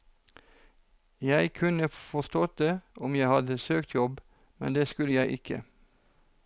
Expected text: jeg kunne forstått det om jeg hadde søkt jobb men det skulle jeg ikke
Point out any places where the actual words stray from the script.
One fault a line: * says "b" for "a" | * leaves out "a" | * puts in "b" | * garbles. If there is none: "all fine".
all fine